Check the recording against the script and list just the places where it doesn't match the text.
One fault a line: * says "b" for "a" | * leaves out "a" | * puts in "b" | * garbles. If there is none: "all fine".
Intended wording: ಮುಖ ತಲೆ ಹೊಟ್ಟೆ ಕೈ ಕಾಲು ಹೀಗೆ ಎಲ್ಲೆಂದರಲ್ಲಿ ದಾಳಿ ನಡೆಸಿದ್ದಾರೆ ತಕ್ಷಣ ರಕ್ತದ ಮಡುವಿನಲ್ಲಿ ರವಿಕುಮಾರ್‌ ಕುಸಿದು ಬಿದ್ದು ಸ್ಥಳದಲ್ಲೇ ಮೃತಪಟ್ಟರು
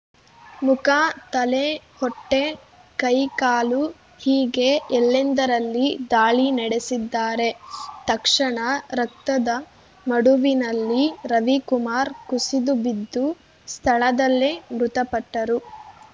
all fine